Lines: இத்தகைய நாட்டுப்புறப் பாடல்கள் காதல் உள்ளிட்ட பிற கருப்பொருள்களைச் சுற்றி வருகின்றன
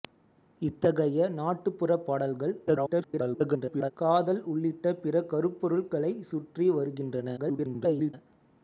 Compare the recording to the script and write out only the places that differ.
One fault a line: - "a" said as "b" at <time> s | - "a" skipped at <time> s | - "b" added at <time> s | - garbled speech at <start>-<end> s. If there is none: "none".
- garbled speech at 2.7-3.9 s
- garbled speech at 7.4-8.1 s